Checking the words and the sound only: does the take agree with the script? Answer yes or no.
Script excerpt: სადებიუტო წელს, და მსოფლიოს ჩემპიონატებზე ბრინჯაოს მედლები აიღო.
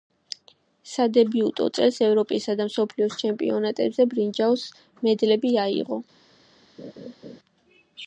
no